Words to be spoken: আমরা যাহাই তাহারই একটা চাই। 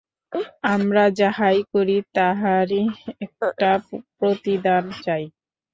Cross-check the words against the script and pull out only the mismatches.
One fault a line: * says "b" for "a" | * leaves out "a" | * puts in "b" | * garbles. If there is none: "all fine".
* puts in "করি"
* puts in "প্রতিদান"